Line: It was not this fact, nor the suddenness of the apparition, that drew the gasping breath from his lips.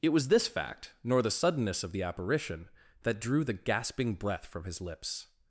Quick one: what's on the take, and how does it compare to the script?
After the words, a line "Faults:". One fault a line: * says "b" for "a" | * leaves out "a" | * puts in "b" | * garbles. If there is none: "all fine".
It was this fact, nor the suddenness of the apparition, that drew the gasping breath from his lips.
Faults:
* leaves out "not"